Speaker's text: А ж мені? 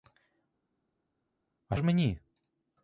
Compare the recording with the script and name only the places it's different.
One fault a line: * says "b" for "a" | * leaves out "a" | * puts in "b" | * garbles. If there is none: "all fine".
all fine